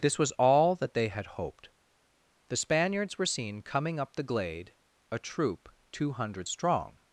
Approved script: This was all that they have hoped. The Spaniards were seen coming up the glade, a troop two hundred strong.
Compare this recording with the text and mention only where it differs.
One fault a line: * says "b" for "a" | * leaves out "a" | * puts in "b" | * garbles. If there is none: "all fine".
* says "had" for "have"